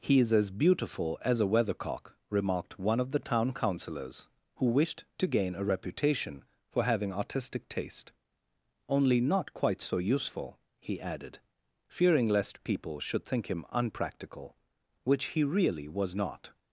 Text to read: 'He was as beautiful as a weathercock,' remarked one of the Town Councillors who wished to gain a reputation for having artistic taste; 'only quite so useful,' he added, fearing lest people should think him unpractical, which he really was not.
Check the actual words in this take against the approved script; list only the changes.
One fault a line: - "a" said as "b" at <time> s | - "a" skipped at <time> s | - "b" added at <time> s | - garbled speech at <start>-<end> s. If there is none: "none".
- "was" said as "is" at 0.2 s
- "not" added at 9.2 s